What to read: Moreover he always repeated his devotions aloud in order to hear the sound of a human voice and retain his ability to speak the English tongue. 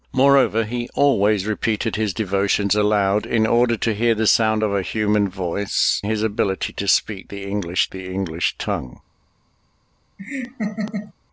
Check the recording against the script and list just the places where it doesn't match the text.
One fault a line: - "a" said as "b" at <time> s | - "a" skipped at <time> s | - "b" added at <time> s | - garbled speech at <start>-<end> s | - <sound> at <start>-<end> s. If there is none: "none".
- "and retain" skipped at 6.0 s
- "the English" added at 7.9 s
- laugh at 10.2-11.1 s